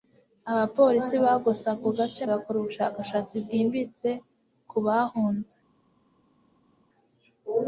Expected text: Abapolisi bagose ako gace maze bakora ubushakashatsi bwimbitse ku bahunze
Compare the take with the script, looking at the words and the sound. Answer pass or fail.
fail